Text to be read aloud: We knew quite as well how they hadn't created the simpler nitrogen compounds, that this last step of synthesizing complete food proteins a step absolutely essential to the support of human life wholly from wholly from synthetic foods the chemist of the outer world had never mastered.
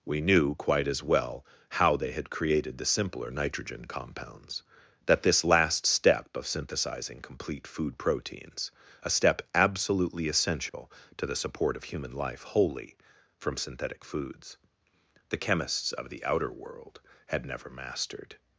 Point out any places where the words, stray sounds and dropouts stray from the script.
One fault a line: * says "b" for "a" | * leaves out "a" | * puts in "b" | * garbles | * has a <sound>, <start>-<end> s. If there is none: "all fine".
* says "had" for "hadn't"
* has a dropout, 10.7-10.7 s
* leaves out "wholly from"
* says "chemists" for "chemist"